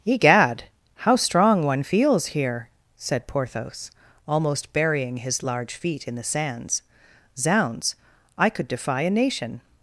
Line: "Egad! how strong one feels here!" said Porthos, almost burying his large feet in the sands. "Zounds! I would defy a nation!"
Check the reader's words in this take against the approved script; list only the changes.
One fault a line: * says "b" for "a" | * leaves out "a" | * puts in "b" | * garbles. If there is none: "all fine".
* says "could" for "would"